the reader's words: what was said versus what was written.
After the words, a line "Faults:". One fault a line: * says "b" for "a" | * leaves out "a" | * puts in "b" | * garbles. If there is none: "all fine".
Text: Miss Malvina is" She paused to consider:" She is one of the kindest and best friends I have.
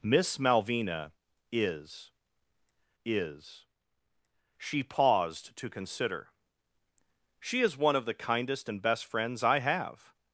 Miss Malvina is is" She paused to consider:" She is one of the kindest and best friends I have.
Faults:
* puts in "is"